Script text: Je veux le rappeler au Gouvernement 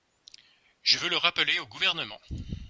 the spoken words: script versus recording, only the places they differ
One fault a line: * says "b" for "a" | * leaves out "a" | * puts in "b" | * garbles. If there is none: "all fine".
all fine